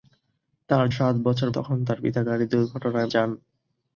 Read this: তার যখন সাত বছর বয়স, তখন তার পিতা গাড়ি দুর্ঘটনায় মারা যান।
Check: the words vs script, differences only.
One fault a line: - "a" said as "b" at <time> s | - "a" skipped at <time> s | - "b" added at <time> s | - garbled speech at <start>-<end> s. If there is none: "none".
- "যখন" skipped at 0.8 s
- "বয়স" skipped at 1.5 s
- "মারা" skipped at 3.1 s